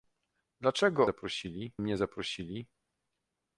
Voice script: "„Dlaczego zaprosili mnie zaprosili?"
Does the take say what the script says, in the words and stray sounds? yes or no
yes